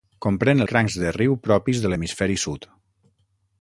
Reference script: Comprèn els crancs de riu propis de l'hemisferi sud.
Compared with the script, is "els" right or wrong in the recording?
wrong